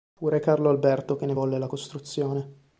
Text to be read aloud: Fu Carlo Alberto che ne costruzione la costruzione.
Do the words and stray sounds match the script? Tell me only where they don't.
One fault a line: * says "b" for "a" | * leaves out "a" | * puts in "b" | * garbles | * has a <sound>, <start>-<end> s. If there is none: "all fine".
* puts in "re"
* says "volle" for "costruzione"